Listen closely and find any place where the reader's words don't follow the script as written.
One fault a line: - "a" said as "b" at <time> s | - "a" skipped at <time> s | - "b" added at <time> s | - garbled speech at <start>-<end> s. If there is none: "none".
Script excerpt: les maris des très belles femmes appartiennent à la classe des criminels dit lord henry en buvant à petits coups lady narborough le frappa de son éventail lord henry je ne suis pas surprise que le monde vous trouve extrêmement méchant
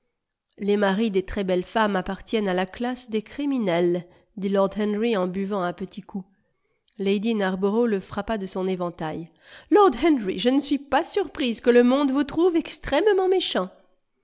none